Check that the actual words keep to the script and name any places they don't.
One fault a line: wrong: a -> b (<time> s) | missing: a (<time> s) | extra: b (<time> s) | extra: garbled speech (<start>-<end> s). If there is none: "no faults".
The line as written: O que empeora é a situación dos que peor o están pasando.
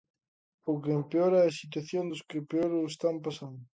no faults